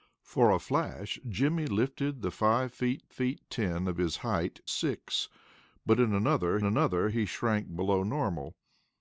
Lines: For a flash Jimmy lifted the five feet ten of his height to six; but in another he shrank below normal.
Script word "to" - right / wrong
wrong